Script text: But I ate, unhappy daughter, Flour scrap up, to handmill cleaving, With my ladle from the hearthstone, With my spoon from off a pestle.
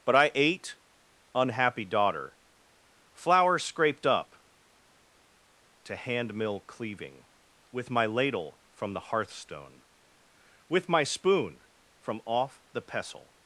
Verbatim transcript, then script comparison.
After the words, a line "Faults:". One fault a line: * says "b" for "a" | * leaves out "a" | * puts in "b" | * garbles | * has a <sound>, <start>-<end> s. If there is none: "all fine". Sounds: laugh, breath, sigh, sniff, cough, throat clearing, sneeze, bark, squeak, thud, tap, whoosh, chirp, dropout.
But I ate, unhappy daughter, Flour scraped up, to handmill cleaving, With my ladle from the hearthstone, With my spoon from off the pestle.
Faults:
* says "scraped" for "scrap"
* says "the" for "a"